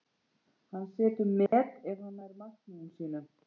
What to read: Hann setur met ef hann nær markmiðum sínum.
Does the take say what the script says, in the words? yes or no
yes